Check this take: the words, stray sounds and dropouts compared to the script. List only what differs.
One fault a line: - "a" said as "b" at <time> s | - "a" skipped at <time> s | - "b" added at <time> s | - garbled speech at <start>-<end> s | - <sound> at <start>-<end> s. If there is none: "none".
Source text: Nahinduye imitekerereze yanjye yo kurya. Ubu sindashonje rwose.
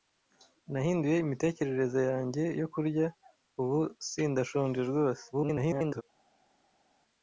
- garbled speech at 5.3-6.0 s